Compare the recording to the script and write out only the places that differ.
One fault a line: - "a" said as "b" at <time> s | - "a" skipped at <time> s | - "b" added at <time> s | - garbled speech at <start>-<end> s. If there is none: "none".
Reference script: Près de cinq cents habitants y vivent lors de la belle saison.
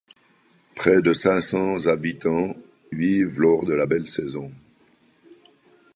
- "y" skipped at 2.5 s